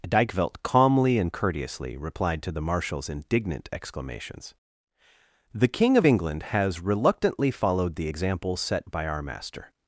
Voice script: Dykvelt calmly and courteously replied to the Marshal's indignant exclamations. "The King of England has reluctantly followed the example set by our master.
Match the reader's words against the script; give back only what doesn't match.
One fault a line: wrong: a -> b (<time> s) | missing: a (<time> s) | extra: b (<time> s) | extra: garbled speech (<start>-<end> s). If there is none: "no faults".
no faults